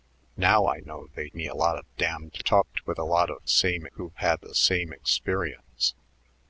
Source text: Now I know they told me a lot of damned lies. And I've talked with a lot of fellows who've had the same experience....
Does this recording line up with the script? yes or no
no